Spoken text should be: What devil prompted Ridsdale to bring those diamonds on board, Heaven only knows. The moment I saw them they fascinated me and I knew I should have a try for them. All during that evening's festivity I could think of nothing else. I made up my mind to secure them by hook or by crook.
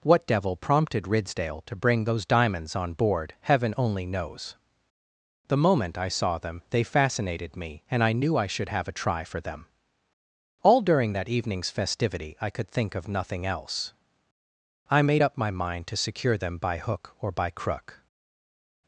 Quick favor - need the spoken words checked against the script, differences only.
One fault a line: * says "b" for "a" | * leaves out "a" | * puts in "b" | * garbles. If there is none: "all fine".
all fine